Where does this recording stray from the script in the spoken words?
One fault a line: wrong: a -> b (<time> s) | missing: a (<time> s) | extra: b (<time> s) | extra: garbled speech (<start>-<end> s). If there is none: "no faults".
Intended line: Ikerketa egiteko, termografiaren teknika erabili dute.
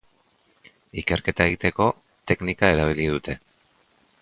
missing: termografiaren (1.9 s)